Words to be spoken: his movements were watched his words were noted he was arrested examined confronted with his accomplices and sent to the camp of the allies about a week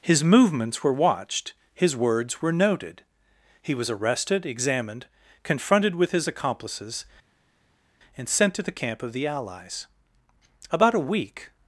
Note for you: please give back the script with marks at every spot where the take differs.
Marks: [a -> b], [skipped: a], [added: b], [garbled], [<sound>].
his movements were watched his words were noted he was arrested examined confronted with his accomplices and sent to the camp of the allies about a week